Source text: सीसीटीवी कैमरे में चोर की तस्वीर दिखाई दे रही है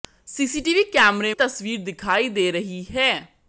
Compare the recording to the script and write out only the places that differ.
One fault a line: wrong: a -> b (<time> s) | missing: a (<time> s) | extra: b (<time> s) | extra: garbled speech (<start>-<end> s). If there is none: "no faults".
missing: में चोर की (1.3 s)